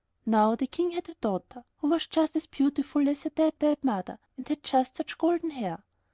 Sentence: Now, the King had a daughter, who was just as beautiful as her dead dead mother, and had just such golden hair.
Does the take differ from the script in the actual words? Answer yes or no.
no